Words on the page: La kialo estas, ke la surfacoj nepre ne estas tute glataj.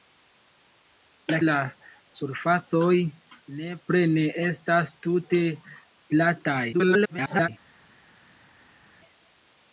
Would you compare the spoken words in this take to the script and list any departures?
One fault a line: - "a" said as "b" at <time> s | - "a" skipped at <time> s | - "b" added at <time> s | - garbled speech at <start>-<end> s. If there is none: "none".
- "kialo estas ke" skipped at 1.4 s
- garbled speech at 6.7-7.5 s